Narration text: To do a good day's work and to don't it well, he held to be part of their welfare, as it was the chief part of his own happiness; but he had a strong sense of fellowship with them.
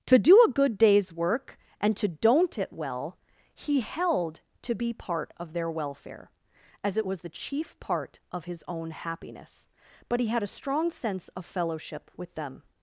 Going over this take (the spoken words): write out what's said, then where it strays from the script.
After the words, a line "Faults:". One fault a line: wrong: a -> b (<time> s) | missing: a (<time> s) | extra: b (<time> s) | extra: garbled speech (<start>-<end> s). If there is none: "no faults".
To do a good day's work and to don't it well, he held to be part of their welfare, as it was the chief part of his own happiness; but he had a strong sense of fellowship with them.
Faults:
no faults